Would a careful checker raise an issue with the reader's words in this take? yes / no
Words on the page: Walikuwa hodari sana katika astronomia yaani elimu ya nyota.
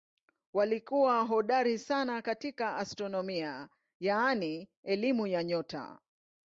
no